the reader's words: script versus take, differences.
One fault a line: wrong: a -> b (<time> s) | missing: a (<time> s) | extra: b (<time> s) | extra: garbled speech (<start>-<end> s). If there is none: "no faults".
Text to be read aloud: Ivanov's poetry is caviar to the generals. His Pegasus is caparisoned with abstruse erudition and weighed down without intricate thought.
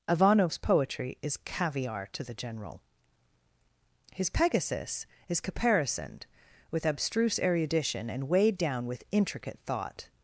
wrong: generals -> general (2.3 s)
wrong: without -> with (8.8 s)